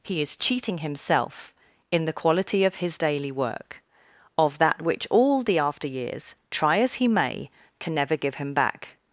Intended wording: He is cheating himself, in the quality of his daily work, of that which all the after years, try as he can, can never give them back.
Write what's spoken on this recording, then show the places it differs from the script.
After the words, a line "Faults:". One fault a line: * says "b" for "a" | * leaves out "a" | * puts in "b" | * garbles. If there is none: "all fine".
He is cheating himself, in the quality of his daily work, of that which all the after years, try as he may, can never give him back.
Faults:
* says "may" for "can"
* says "him" for "them"